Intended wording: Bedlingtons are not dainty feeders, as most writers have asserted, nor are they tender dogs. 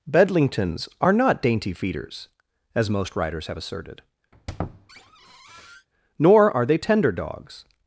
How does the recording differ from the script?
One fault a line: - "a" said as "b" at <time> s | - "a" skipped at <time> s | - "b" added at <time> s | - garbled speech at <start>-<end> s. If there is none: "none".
none